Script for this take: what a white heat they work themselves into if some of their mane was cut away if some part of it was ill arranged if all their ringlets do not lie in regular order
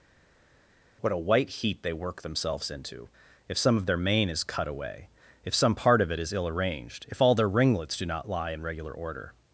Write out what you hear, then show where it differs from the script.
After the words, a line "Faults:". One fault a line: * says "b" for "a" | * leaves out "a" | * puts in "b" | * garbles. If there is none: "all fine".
what a white heat they work themselves into if some of their mane is cut away if some part of it is ill arranged if all their ringlets do not lie in regular order
Faults:
* says "is" for "was"
* says "is" for "was"